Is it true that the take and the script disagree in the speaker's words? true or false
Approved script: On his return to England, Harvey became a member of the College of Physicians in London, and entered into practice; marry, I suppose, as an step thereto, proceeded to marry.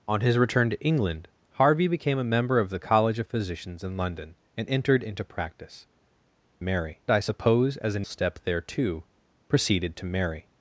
false